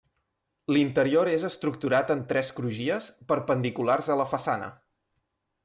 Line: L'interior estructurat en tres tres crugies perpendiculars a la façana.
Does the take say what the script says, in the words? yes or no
no